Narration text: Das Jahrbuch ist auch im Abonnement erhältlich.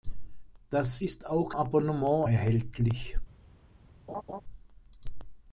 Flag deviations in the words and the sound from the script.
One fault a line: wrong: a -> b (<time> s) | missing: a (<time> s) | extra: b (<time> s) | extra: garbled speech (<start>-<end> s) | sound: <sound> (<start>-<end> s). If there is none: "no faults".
missing: Jahrbuch (1.0 s)
missing: im (1.5 s)
sound: laugh (4.1-4.4 s)